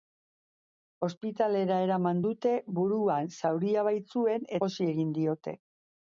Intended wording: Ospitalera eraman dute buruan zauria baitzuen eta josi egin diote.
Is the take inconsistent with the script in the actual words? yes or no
yes